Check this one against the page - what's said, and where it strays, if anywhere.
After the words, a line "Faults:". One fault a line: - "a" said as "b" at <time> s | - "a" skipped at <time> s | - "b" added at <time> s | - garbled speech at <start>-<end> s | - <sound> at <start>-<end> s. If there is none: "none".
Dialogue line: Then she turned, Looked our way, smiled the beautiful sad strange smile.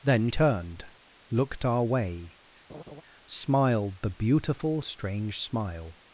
Then turned, Looked our way, smiled the beautiful strange smile.
Faults:
- "she" skipped at 0.3 s
- laugh at 2.7-3.0 s
- "sad" skipped at 4.8 s